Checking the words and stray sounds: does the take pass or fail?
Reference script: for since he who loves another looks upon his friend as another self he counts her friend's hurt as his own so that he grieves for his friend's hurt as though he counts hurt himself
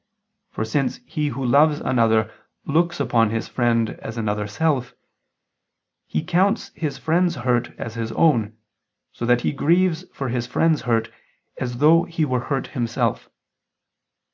fail